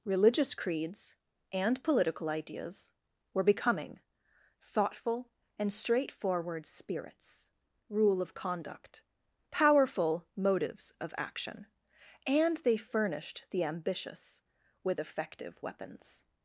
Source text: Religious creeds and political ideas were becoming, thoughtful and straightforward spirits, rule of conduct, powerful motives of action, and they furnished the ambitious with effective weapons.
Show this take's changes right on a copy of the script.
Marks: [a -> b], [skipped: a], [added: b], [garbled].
Religious creeds and political ideas were becoming, thoughtful and straightforward spirits, rule of conduct, powerful motives of action, and they furnished the ambitious with effective weapons.